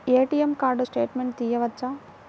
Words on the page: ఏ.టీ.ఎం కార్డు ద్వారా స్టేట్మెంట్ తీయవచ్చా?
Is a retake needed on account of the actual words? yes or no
yes